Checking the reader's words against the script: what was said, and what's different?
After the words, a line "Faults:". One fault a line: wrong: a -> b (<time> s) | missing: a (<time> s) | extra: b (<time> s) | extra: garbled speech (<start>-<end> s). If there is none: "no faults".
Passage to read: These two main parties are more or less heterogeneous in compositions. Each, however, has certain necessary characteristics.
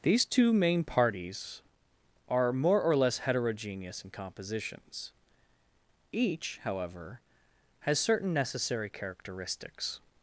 These two main parties are more or less heterogeneous in compositions. Each, however, has certain necessary characteristics.
Faults:
no faults